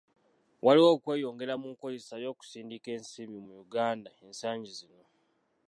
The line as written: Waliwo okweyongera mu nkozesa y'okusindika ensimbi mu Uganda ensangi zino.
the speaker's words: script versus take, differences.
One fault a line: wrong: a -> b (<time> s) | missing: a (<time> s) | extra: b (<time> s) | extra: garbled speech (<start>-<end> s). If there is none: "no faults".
no faults